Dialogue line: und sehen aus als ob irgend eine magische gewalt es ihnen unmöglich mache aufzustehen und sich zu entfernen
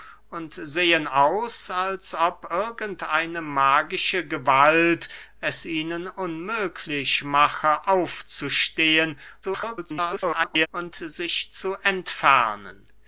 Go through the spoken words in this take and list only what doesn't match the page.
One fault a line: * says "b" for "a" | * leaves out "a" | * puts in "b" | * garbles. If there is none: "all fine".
* garbles